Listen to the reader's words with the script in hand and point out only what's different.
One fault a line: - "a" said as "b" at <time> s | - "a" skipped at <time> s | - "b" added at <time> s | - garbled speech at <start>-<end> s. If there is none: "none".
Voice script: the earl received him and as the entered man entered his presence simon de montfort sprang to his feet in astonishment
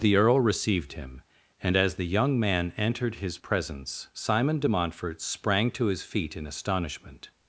- "entered" said as "young" at 2.1 s